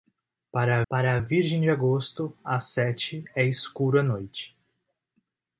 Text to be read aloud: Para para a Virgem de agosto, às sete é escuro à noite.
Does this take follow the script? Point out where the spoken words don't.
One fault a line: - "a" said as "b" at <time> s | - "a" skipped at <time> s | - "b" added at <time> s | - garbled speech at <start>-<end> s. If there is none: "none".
none